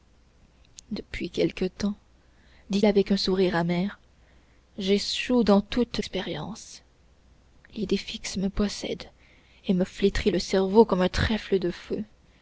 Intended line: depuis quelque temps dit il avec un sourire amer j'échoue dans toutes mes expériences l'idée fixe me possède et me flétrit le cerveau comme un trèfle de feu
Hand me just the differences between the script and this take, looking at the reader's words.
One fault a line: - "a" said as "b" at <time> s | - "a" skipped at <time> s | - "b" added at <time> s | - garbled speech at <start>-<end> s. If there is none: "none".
- "il" skipped at 2.8 s
- "mes" skipped at 6.0 s